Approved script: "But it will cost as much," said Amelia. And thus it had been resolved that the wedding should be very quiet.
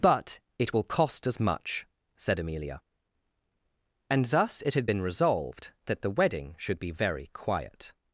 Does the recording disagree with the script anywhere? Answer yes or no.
no